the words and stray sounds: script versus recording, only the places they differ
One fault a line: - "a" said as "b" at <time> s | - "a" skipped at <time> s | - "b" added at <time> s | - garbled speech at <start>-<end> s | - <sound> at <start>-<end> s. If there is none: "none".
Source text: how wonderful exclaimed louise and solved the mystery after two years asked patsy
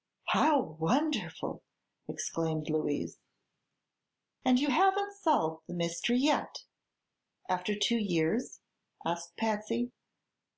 - "you haven't" added at 4.6 s
- "yet" added at 6.2 s